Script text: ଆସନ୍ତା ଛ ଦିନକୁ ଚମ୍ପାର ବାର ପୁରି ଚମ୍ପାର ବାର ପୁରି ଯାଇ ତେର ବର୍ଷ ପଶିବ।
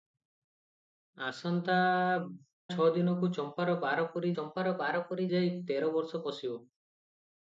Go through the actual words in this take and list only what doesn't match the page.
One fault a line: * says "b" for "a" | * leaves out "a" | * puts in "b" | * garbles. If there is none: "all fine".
all fine